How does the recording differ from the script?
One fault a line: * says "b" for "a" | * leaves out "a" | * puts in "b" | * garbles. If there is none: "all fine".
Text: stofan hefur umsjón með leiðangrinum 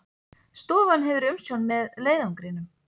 all fine